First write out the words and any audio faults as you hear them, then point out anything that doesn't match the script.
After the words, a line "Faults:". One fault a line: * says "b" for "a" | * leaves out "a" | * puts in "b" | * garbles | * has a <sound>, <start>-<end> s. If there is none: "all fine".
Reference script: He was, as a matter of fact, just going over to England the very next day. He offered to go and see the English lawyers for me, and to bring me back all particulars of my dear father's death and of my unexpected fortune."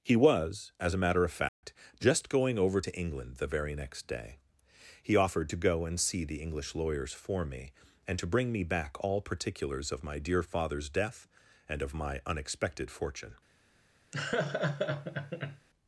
He was, as a matter of fact, just going over to England the very next day. He offered to go and see the English lawyers for me, and to bring me back all particulars of my dear father's death and of my unexpected fortune."
Faults:
* has a dropout, 1.5-1.6 s
* has a laugh, 14.1-15.7 s